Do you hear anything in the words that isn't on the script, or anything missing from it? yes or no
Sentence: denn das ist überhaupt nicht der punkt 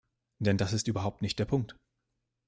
no